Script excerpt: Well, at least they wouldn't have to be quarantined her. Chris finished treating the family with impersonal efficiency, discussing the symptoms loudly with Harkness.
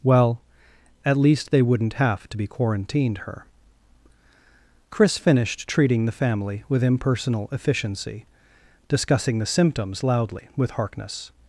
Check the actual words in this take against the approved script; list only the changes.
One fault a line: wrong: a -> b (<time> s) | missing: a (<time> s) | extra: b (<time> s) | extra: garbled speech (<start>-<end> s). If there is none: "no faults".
no faults